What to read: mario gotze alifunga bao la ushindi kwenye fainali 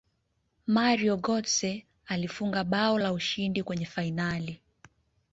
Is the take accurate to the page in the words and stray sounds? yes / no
yes